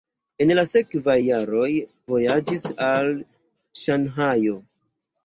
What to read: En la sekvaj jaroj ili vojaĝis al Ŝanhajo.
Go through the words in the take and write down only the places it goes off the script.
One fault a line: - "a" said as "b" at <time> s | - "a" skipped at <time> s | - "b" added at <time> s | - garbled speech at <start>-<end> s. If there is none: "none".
- "ili" skipped at 1.7 s